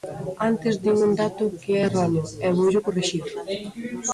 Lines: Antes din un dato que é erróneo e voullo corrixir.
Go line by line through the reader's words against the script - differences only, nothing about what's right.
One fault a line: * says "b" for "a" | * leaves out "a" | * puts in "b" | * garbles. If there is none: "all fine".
all fine